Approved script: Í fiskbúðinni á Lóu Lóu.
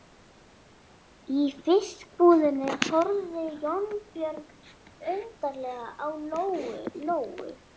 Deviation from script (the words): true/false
true